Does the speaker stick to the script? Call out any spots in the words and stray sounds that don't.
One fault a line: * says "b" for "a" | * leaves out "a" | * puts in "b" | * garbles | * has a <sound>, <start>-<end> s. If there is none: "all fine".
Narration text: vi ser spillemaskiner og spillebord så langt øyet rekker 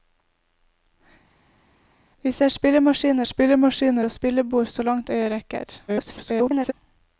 * puts in "spillemaskiner"
* garbles